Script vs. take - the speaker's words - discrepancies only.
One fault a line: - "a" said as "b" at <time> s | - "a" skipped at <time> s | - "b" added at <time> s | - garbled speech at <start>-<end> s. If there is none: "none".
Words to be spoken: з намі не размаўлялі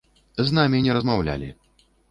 none